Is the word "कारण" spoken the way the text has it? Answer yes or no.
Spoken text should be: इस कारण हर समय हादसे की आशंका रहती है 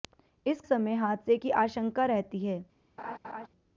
no